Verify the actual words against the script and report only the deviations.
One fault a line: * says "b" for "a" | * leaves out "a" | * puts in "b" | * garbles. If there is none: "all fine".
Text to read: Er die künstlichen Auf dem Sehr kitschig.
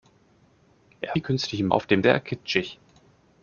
all fine